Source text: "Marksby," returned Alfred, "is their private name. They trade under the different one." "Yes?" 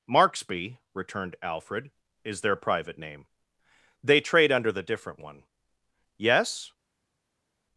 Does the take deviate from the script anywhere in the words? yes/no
no